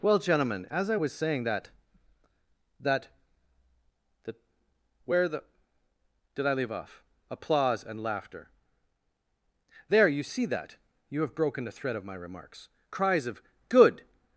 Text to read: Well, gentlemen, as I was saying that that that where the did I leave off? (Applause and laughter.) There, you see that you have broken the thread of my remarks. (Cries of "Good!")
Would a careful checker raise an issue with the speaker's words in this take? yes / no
no